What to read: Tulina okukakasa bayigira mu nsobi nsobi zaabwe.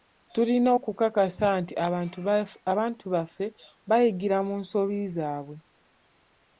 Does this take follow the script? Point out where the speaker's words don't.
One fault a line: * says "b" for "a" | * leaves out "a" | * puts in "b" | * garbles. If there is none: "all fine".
* puts in "nti abantu baffe"
* leaves out "nsobi"